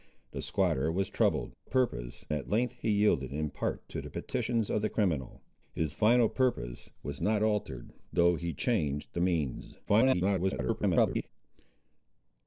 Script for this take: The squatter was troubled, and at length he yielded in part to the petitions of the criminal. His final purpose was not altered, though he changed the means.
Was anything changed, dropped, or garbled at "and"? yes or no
yes